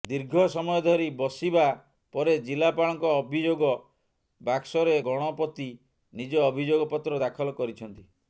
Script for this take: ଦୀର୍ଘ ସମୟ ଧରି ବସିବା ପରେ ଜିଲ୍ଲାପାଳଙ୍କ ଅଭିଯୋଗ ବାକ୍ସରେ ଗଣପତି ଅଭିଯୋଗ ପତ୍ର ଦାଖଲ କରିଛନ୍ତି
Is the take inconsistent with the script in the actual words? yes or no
yes